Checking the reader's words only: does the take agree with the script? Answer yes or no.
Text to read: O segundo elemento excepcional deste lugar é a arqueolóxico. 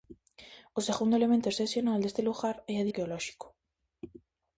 yes